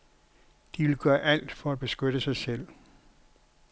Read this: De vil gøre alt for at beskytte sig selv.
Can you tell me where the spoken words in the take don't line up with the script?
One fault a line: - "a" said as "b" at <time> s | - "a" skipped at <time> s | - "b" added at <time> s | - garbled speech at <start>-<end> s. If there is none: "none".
none